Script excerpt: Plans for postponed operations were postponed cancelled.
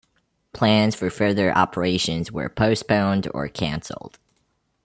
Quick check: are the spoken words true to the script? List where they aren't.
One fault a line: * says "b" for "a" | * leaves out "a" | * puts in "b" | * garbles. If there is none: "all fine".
* says "further" for "postponed"
* puts in "or"